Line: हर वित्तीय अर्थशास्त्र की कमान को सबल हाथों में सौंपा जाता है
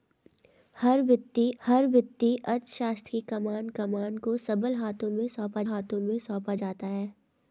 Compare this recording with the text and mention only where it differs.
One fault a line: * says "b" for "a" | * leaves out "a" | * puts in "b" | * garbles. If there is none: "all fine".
* puts in "हर वित्तीय"
* puts in "कमान"
* puts in "हाथों में सौंपा"